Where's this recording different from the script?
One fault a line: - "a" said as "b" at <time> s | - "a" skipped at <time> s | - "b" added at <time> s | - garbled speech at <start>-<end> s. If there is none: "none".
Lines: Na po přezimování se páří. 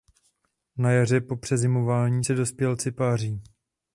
- "jaře" added at 0.9 s
- "dospělci" added at 2.3 s